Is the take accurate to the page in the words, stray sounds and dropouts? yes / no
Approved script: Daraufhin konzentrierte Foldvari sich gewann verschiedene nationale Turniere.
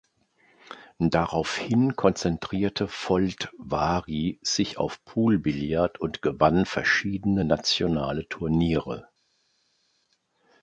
no